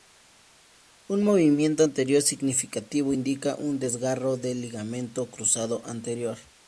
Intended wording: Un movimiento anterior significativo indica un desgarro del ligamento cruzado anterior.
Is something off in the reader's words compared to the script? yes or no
no